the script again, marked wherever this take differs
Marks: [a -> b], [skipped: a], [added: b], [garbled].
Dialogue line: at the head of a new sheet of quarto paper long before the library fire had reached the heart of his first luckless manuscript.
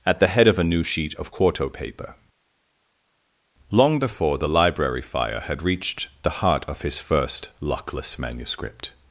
at the head of a new sheet of quarto paper long before the library fire had reached the heart of his first luckless manuscript.